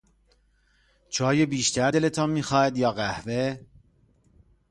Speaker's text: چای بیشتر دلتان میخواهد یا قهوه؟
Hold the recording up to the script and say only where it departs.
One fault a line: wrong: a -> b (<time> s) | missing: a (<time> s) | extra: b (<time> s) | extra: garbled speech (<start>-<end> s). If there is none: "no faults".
no faults